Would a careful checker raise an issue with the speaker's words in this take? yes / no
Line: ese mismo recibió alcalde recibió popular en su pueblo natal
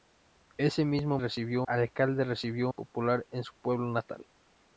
no